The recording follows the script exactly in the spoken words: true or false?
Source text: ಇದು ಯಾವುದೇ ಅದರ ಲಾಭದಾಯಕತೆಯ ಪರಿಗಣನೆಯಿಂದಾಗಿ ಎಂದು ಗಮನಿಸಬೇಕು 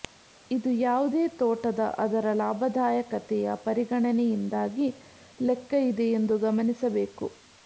false